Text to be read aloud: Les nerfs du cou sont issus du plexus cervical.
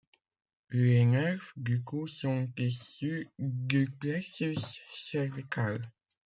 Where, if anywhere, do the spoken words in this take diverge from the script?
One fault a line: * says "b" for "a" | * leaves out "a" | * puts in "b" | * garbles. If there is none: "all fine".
all fine